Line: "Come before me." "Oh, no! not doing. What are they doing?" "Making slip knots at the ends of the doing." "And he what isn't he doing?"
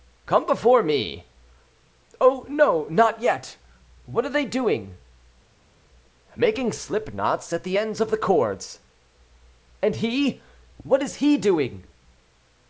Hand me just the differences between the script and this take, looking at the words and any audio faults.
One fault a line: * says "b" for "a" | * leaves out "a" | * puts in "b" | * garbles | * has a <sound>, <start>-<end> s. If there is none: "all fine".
* says "yet" for "doing"
* says "cords" for "doing"
* says "is" for "isn't"